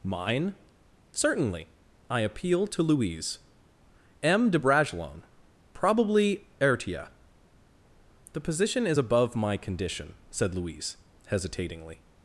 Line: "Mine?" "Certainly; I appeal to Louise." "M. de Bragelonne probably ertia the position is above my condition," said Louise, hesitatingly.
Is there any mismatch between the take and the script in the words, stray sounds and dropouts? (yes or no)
no